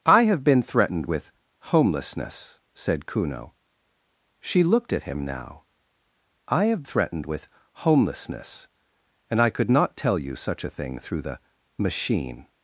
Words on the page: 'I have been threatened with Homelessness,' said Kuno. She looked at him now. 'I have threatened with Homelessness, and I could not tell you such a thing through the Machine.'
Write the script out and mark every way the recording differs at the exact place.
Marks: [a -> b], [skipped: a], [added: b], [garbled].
'I have been threatened with Homelessness,' said Kuno. She looked at him now. 'I have threatened with Homelessness, and I could not tell you such a thing through the Machine.'